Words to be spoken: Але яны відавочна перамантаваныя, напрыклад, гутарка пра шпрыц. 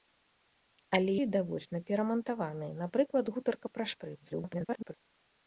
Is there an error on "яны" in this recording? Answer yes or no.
yes